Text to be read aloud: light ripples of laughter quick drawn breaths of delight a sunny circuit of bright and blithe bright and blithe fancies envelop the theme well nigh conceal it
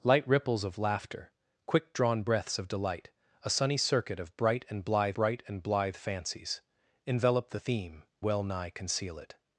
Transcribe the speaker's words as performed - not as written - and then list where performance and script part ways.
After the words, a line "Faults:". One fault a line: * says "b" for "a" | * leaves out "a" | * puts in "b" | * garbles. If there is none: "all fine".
light ripples of laughter quick drawn breaths of delight a sunny circuit of bright and blithe bright and blithe fancies envelop the theme well nigh conceal it
Faults:
all fine